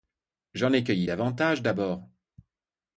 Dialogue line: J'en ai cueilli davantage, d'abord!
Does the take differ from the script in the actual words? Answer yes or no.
no